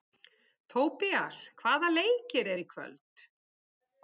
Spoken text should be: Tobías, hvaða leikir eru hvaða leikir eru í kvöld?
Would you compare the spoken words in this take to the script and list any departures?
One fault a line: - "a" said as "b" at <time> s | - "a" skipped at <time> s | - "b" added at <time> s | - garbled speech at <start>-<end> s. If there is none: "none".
- "hvaða leikir eru" skipped at 2.7 s